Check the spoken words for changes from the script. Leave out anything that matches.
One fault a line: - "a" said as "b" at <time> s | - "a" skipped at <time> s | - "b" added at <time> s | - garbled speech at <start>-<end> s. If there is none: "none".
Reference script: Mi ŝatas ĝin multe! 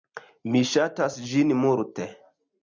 none